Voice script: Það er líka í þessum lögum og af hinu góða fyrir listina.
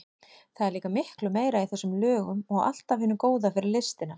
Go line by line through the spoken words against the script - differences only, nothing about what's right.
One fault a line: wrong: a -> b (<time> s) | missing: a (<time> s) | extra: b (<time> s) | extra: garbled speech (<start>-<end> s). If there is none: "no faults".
extra: miklu meira (0.9 s)
extra: allt (2.7 s)